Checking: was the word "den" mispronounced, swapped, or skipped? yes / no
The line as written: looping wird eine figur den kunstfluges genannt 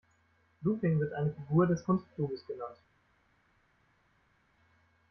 yes